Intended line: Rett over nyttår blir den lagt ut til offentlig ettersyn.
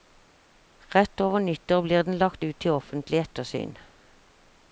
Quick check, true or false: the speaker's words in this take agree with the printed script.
true